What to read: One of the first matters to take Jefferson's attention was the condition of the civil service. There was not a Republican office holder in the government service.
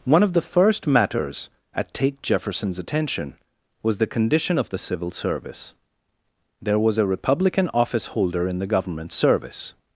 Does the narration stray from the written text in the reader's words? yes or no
yes